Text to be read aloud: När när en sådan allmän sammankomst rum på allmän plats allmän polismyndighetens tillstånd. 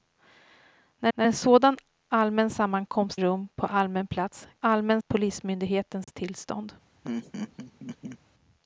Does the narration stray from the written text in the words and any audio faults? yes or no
yes